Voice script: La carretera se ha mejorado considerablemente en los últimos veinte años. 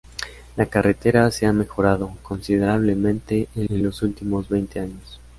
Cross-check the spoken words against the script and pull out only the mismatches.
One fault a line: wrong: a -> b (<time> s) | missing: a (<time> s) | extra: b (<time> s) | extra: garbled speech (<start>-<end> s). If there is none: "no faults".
extra: en (3.7 s)